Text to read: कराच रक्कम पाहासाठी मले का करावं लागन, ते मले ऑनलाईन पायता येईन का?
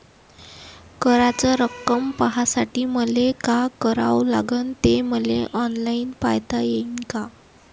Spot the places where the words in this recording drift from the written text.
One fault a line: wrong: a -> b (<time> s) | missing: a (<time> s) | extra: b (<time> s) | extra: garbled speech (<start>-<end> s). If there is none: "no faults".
no faults